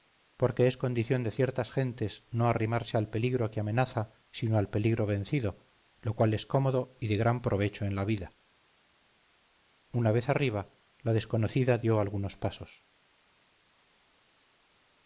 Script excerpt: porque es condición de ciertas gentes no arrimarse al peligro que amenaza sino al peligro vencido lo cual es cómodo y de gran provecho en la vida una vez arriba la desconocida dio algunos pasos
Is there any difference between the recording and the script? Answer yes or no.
no